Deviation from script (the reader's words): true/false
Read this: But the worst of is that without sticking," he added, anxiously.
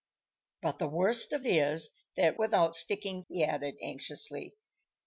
false